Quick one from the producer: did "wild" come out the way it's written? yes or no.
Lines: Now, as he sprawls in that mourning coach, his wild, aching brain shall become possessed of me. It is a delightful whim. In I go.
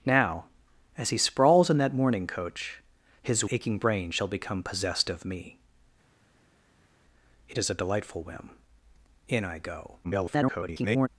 no